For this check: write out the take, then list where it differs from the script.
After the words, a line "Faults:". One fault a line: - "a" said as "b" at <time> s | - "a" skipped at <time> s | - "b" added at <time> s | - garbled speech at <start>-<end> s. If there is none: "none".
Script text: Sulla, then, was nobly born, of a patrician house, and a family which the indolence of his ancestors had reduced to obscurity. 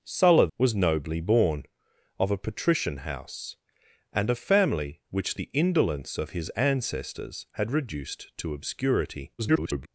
Sulla, was nobly born, of a patrician house, and a family which the indolence of his ancestors had reduced to obscurity. [garbled]
Faults:
- "then" skipped at 0.5 s
- garbled speech at 9.4-9.9 s